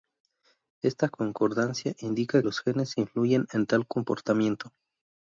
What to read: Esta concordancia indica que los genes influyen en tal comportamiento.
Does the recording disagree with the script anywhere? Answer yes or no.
yes